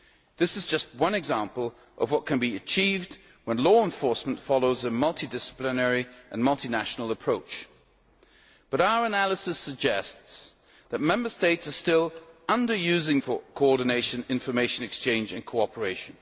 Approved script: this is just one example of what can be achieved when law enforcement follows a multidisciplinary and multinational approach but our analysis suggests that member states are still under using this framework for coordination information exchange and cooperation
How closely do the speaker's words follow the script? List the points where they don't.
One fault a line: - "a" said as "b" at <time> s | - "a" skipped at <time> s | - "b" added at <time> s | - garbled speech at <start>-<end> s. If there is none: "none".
- "this framework" skipped at 13.2 s